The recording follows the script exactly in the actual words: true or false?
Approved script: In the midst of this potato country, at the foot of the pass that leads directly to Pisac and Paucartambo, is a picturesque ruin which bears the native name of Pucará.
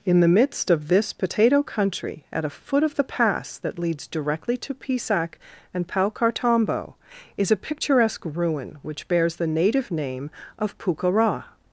false